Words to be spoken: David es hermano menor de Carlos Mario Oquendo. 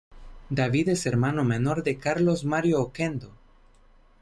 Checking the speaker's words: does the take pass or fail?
pass